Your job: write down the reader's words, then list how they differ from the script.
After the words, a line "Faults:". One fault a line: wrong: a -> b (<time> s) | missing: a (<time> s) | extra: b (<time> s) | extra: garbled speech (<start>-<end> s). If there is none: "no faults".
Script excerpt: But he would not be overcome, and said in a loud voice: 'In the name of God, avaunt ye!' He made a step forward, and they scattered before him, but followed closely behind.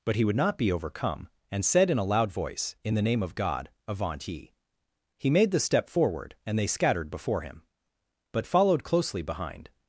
But he would not be overcome, and said in a loud voice: 'In the name of God, avaunt ye!' He made the step forward, and they scattered before him, but followed closely behind.
Faults:
wrong: a -> the (5.5 s)